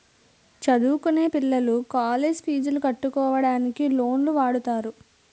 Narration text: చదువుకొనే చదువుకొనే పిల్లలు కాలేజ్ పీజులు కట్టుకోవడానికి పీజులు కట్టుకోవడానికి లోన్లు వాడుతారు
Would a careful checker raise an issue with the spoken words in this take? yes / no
yes